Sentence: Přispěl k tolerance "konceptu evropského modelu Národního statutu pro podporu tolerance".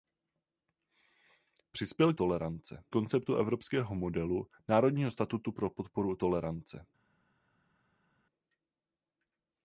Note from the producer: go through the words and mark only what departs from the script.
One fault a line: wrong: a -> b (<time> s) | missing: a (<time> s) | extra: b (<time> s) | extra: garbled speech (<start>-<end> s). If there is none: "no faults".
no faults